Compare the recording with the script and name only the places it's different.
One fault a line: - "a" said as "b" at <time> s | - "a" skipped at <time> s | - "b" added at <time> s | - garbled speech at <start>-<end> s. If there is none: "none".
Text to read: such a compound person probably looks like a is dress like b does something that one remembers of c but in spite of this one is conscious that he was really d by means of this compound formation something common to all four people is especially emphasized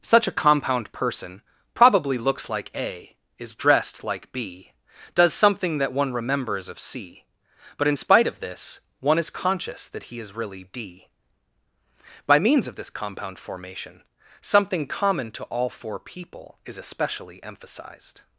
- "dress" said as "dressed" at 3.5 s
- "was" said as "is" at 10.2 s